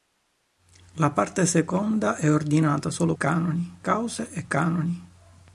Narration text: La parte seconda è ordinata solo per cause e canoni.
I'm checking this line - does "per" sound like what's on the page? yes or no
no